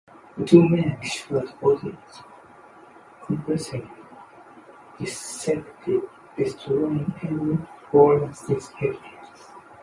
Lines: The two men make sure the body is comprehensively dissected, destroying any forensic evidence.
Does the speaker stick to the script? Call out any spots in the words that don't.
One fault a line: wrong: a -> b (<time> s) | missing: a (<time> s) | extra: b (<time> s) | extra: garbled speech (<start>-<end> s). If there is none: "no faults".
missing: make (1.0 s)